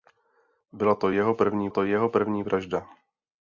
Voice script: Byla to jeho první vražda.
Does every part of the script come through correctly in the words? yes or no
no